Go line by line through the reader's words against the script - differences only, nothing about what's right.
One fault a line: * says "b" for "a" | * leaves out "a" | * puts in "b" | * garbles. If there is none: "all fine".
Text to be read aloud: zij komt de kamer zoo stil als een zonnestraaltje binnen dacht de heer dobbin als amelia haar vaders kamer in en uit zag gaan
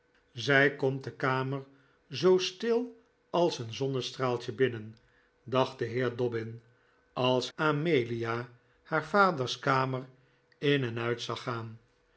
all fine